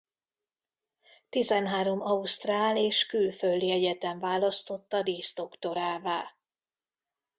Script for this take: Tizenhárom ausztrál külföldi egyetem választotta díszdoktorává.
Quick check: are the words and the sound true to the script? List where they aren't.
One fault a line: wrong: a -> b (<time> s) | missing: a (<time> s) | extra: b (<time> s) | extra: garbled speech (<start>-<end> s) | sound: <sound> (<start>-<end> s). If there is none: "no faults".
extra: és (2.8 s)